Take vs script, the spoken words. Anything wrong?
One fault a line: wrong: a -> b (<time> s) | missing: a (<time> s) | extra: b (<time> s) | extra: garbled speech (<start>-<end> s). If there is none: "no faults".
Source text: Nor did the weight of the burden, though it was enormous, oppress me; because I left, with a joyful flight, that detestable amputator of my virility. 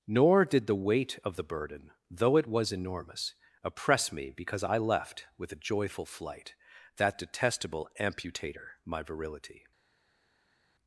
missing: of (8.7 s)